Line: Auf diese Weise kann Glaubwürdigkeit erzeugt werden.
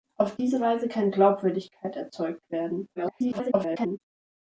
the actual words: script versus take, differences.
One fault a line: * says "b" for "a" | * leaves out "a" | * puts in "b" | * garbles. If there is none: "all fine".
* garbles